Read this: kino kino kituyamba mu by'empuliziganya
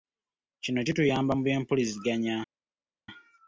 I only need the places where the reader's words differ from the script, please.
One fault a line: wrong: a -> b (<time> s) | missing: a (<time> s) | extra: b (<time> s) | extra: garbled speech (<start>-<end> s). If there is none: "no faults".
missing: kino (0.8 s)